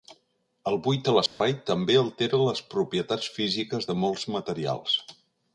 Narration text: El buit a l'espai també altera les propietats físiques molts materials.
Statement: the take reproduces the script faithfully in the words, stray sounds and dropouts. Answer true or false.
false